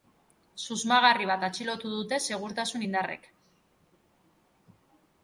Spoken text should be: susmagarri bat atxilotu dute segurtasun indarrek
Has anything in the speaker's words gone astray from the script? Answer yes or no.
no